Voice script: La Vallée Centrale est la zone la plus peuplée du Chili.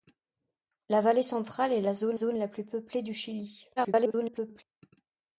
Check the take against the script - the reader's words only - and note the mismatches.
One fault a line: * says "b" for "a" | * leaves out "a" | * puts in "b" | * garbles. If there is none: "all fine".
* puts in "zone"
* garbles